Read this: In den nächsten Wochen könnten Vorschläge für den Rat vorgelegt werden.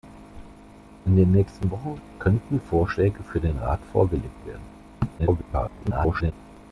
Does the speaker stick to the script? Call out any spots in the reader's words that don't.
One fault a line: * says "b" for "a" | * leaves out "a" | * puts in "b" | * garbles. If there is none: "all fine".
* garbles